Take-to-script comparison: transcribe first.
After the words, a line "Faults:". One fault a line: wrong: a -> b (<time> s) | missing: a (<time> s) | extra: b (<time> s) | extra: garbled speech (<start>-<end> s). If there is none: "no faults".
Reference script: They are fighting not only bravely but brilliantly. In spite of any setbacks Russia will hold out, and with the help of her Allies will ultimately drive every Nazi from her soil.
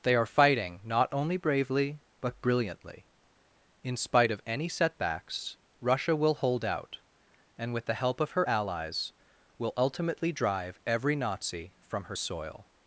They are fighting not only bravely but brilliantly. In spite of any setbacks Russia will hold out, and with the help of her Allies will ultimately drive every Nazi from her soil.
Faults:
no faults